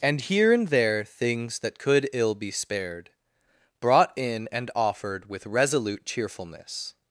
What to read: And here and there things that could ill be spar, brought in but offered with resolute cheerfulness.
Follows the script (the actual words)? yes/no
no